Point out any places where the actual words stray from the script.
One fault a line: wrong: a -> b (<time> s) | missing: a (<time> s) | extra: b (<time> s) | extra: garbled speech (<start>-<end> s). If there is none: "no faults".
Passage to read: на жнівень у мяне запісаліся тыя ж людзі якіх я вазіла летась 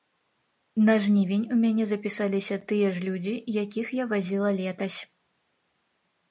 no faults